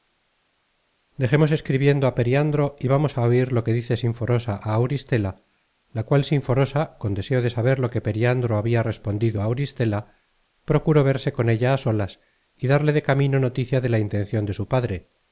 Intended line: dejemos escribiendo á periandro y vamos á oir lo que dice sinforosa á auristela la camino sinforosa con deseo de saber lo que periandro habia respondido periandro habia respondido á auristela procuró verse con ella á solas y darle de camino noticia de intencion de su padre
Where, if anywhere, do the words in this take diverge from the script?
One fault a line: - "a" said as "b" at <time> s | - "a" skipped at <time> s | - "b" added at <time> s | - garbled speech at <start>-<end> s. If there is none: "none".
- "camino" said as "cual" at 6.1 s
- "periandro habia respondido" skipped at 9.4 s
- "la" added at 13.9 s